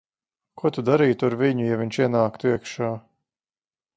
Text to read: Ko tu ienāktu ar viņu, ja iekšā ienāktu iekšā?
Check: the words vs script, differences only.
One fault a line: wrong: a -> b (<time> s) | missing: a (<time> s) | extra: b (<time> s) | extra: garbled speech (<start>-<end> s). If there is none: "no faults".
wrong: ienāktu -> darītu (0.9 s)
wrong: iekšā -> viņš (1.8 s)